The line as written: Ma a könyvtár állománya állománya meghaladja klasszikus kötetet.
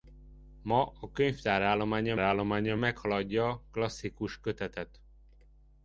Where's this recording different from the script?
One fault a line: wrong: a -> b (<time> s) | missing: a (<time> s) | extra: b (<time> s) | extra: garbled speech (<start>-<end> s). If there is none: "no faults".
no faults